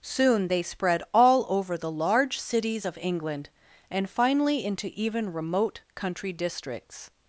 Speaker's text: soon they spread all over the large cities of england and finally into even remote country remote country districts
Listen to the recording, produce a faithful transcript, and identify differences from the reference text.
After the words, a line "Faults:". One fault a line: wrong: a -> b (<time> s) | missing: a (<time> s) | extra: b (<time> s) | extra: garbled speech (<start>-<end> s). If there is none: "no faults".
soon they spread all over the large cities of england and finally into even remote country districts
Faults:
missing: remote country (6.3 s)